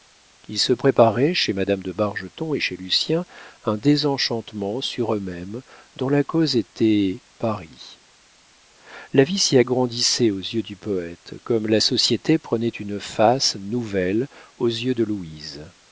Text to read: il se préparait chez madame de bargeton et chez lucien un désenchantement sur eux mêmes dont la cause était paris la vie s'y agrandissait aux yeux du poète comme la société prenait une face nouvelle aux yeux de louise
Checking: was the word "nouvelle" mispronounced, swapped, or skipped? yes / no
no